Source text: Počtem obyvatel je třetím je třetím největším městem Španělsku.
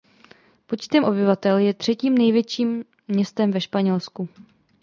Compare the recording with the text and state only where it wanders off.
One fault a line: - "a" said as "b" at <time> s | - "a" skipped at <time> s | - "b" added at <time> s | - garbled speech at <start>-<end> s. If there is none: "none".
- "je třetím" skipped at 2.2 s
- "ve" added at 3.5 s